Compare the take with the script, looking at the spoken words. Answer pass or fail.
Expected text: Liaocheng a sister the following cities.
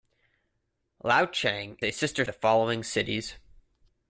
pass